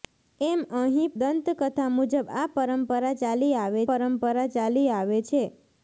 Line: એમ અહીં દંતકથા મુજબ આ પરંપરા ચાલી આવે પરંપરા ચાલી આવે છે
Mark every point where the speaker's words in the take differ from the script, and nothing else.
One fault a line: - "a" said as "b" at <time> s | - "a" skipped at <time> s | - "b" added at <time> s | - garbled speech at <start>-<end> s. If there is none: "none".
none